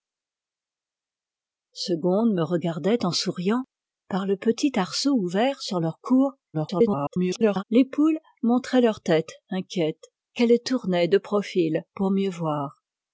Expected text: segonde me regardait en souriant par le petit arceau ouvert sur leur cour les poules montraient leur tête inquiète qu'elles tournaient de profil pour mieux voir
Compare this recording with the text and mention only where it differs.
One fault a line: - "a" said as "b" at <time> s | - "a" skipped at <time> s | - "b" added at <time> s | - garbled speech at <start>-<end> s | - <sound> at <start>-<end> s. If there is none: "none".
- garbled speech at 6.5-7.6 s